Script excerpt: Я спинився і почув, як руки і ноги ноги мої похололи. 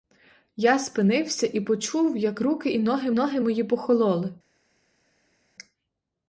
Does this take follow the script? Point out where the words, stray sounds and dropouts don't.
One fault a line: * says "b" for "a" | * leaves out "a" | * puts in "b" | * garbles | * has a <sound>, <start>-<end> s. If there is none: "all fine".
all fine